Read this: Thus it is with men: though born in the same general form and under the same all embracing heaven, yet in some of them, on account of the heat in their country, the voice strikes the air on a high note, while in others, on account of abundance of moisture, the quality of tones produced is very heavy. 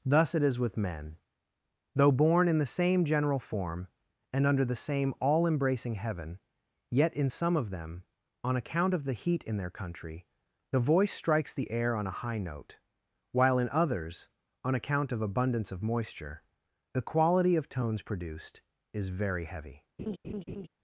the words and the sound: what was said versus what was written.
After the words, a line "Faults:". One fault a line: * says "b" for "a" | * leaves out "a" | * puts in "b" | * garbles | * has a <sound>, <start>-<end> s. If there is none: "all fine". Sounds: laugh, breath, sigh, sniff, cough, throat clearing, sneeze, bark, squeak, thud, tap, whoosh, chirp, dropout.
Thus it is with men: though born in the same general form and under the same all embracing heaven, yet in some of them, on account of the heat in their country, the voice strikes the air on a high note, while in others, on account of abundance of moisture, the quality of tones produced is very heavy.
Faults:
* has a laugh, 20.0-20.7 s